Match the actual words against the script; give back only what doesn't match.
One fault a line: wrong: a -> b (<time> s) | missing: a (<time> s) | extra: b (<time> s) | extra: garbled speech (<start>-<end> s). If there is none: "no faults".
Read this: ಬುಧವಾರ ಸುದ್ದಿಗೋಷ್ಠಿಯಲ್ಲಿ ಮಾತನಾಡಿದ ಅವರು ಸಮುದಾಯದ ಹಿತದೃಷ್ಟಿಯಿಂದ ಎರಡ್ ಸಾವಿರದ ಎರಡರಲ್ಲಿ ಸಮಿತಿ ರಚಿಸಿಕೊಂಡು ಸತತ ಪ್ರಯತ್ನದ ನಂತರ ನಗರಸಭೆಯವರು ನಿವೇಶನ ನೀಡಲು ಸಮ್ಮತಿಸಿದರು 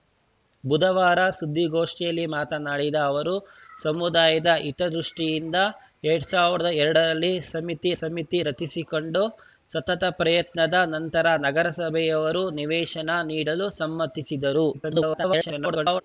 extra: ಸಮಿತಿ (8.0 s)
extra: garbled speech (14.7-16.0 s)